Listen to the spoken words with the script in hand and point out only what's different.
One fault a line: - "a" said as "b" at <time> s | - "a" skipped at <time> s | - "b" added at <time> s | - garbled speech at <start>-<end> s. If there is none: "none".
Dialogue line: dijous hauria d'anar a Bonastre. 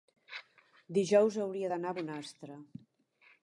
none